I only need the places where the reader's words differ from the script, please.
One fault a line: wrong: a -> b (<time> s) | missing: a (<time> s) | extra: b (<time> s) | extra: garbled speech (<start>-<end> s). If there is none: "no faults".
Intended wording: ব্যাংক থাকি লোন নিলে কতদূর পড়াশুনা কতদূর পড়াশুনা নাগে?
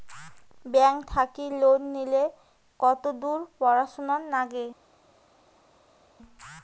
missing: কতদূর পড়াশুনা (4.1 s)